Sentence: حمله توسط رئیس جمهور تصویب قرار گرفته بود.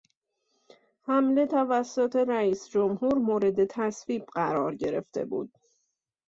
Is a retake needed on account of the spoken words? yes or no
yes